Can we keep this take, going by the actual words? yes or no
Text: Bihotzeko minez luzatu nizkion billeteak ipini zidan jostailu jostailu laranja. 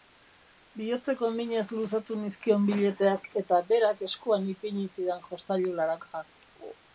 no